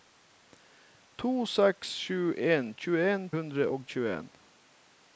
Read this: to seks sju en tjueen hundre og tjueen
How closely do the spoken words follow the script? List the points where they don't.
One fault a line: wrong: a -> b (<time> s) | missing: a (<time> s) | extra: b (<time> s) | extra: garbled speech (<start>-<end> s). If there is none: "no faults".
no faults